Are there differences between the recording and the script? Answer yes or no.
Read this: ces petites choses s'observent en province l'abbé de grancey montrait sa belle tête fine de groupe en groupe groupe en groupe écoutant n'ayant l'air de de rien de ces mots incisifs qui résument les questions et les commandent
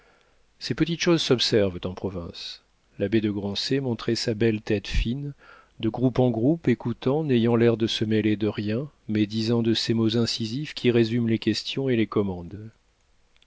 yes